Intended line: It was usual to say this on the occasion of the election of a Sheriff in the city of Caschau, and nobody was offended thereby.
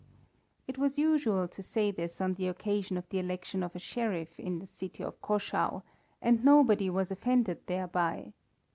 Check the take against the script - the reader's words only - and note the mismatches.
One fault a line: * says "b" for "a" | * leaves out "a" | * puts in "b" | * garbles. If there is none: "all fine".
all fine